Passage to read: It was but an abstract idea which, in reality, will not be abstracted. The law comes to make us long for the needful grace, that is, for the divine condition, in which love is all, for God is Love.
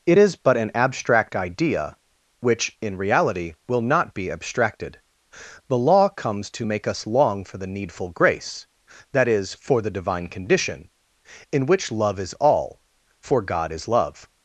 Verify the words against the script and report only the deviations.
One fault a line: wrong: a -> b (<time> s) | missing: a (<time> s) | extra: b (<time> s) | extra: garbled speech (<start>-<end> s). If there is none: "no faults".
wrong: was -> is (0.2 s)